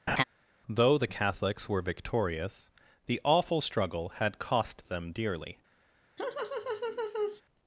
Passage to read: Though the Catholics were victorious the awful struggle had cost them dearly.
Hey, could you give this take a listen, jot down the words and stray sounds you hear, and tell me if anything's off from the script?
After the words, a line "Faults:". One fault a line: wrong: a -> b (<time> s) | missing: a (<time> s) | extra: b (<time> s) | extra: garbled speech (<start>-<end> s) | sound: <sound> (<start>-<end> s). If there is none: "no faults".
Though the Catholics were victorious the awful struggle had cost them dearly.
Faults:
sound: laugh (0.1-0.2 s)
sound: laugh (6.2-7.4 s)